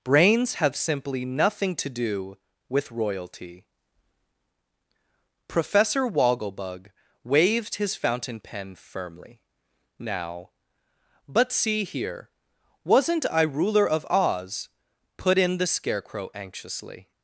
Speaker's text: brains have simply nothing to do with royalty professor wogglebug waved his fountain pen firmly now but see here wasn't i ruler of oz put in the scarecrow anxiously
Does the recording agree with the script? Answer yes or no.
yes